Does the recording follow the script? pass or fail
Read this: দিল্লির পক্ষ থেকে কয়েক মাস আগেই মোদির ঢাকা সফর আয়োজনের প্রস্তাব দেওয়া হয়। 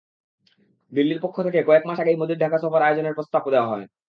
pass